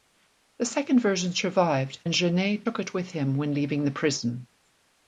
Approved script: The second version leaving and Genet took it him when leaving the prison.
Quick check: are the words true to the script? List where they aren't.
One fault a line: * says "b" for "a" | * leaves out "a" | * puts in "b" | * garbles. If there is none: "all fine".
* says "survived" for "leaving"
* puts in "with"